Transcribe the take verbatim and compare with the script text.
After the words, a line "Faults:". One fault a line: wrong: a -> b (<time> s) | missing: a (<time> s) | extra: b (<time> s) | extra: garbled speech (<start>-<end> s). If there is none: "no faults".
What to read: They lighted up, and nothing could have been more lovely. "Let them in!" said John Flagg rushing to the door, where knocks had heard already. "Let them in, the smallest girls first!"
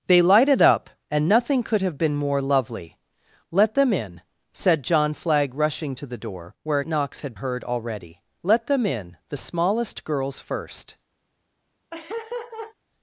They lighted up, and nothing could have been more lovely. "Let them in!" said John Flagg rushing to the door, where knocks had heard already. "Let them in, the smallest girls first!"
Faults:
no faults